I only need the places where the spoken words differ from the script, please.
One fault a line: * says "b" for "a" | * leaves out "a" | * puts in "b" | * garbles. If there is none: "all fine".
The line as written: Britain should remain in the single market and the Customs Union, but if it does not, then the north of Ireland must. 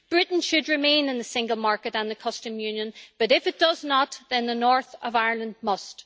all fine